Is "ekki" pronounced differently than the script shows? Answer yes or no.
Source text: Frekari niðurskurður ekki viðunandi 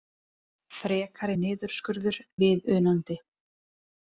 yes